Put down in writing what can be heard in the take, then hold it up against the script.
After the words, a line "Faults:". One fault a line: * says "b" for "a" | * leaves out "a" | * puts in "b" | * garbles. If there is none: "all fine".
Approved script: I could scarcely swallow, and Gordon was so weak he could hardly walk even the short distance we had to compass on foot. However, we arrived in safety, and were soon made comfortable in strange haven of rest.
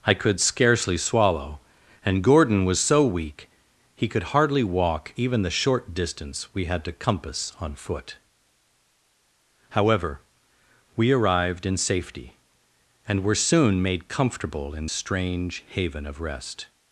I could scarcely swallow, and Gordon was so weak he could hardly walk even the short distance we had to compass on foot. However, we arrived in safety, and were soon made comfortable in strange haven of rest.
Faults:
all fine